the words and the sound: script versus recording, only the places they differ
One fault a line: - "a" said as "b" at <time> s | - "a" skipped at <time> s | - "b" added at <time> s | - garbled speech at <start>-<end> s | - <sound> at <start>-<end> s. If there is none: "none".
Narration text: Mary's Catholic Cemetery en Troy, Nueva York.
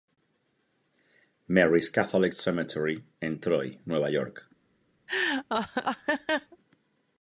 - laugh at 5.1-6.6 s